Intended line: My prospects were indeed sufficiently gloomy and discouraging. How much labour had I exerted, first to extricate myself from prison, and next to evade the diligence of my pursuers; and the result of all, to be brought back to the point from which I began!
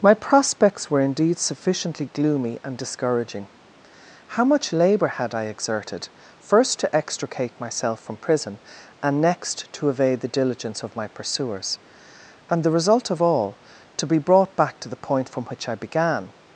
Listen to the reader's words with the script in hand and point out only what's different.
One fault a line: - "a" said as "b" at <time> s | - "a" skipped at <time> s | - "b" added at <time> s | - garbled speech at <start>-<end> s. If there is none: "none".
none